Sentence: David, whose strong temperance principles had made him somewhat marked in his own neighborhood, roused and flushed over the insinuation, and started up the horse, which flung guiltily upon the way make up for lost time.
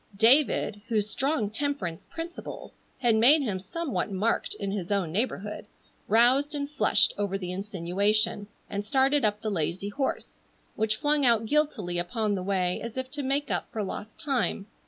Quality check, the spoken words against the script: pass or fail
fail